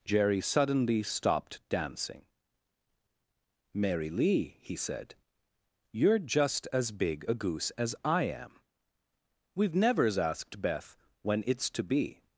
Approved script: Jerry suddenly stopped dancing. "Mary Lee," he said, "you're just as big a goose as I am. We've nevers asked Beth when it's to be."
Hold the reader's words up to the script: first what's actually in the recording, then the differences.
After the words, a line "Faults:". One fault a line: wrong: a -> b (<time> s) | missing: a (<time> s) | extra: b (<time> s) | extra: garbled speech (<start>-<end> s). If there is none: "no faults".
Jerry suddenly stopped dancing. "Mary Lee," he said, "you're just as big a goose as I am. We've nevers asked Beth when it's to be."
Faults:
no faults